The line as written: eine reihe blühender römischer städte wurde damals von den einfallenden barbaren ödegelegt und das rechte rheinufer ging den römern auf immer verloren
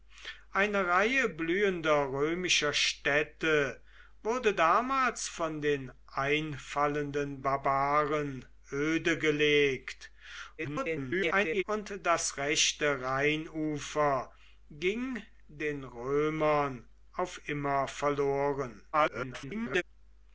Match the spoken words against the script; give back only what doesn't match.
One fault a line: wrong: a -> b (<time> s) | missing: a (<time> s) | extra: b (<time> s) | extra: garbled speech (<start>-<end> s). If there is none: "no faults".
extra: garbled speech (10.6-11.6 s)
extra: garbled speech (18.9-19.8 s)